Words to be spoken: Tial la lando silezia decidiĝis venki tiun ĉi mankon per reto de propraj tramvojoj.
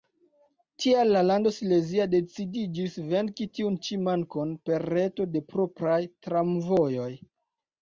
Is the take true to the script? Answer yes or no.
yes